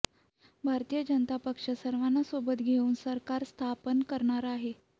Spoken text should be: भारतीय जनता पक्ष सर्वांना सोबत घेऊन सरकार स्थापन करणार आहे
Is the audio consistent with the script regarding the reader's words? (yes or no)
yes